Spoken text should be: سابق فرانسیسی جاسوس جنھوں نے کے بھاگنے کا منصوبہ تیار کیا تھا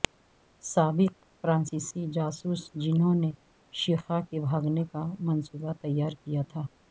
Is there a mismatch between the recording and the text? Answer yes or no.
yes